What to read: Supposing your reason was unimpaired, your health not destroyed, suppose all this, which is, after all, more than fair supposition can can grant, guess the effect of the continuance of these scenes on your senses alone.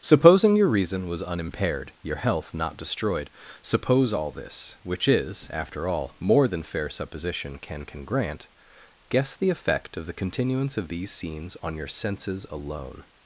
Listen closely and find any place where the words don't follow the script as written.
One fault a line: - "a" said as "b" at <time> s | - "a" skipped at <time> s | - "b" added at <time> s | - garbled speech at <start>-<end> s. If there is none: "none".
none